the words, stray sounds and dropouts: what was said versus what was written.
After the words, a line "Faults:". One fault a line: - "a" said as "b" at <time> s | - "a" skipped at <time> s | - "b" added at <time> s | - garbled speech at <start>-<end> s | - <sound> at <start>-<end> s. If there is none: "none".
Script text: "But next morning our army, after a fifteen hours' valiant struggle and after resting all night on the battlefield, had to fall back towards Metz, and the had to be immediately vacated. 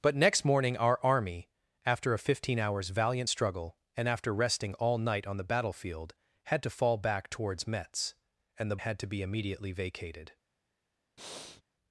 "But next morning our army, after a fifteen hours' valiant struggle and after resting all night on the battlefield, had to fall back towards Metz, and the had to be immediately vacated.
Faults:
- breath at 11.2-11.6 s